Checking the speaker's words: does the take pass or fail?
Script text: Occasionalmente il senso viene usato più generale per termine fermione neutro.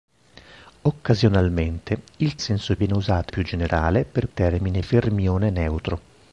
pass